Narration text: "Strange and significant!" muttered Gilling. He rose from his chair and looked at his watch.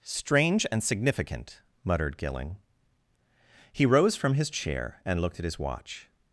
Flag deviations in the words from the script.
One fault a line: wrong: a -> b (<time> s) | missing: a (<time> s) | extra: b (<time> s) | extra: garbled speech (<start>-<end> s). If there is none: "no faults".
no faults